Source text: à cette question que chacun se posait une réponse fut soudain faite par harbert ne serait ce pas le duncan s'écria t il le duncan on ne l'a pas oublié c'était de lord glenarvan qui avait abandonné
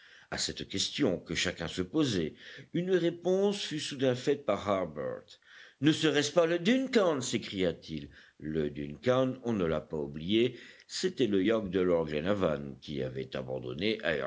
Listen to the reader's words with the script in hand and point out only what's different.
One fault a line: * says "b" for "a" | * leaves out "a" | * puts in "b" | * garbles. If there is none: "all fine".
* puts in "le yacht"